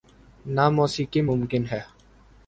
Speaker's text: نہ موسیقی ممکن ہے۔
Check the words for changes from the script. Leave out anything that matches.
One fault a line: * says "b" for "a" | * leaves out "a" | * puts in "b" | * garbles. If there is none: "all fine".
all fine